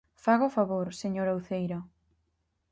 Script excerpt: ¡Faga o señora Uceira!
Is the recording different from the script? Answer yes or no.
yes